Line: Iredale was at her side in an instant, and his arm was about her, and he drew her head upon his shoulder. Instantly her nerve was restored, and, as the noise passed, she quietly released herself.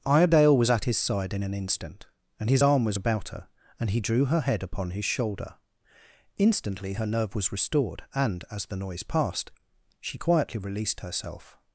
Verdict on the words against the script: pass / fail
fail